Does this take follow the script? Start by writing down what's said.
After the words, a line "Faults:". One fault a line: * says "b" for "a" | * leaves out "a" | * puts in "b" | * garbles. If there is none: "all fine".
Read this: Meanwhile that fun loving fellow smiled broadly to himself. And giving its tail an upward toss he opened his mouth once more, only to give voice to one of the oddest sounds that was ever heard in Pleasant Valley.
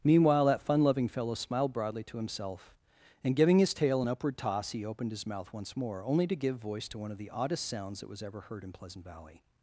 Meanwhile that fun loving fellow smiled broadly to himself. And giving his tail an upward toss he opened his mouth once more, only to give voice to one of the oddest sounds that was ever heard in Pleasant Valley.
Faults:
* says "his" for "its"